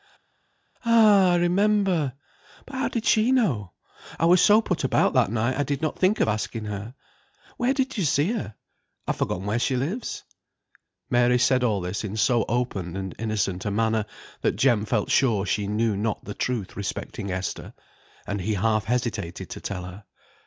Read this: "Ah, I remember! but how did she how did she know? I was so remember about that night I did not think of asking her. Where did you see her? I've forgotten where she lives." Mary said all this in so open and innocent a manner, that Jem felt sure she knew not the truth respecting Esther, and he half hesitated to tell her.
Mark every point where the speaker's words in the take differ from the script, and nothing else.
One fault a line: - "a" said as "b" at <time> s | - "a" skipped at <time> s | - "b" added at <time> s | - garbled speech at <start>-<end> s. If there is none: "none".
- "how did she" skipped at 3.3 s
- "remember" said as "put" at 4.6 s